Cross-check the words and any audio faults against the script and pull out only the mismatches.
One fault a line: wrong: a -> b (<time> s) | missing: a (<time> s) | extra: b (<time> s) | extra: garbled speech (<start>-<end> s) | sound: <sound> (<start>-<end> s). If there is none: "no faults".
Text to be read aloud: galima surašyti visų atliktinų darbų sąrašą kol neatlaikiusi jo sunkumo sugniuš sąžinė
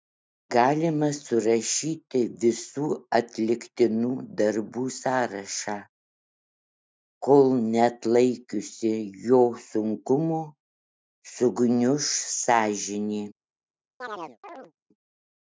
sound: chirp (14.0-14.7 s)